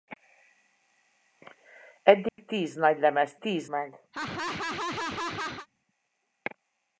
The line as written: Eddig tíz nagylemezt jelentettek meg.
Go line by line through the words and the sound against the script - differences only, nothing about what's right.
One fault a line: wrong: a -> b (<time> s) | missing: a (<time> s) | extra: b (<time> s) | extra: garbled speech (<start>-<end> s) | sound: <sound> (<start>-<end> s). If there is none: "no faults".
sound: dropout (2.3-2.4 s)
wrong: jelentettek -> tíz (3.4 s)
sound: laugh (4.1-5.7 s)